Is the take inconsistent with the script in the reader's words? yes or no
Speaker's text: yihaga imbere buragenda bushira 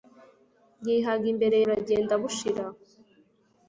no